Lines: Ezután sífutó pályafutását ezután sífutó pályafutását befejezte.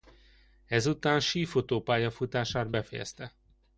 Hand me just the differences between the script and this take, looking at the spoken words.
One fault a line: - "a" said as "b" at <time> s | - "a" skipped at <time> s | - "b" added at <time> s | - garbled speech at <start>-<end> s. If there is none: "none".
- "ezután sífutó pályafutását" skipped at 2.7 s